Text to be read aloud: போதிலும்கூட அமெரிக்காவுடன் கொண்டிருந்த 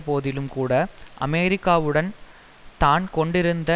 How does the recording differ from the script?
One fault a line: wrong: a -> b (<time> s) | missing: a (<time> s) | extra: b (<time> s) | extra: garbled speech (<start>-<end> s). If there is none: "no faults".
extra: தான் (2.8 s)